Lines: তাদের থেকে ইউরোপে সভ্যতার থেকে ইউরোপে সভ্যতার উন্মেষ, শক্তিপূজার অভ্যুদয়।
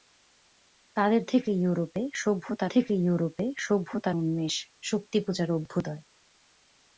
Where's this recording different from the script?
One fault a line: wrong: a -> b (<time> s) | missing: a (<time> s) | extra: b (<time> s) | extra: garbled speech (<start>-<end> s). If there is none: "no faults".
no faults